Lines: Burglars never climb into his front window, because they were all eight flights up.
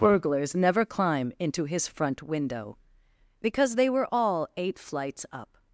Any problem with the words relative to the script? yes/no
no